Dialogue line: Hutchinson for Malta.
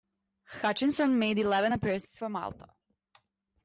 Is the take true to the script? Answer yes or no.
no